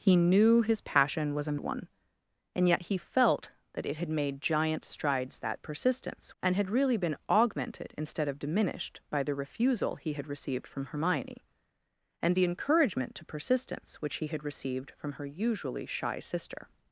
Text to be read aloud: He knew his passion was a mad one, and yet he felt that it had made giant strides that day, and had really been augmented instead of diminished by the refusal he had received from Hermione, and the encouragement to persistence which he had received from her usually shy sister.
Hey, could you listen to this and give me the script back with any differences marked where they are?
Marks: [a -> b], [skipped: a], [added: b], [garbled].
He knew his passion was a [skipped: mad] one, and yet he felt that it had made giant strides that [day, -> persistence] and had really been augmented instead of diminished by the refusal he had received from Hermione, and the encouragement to persistence which he had received from her usually shy sister.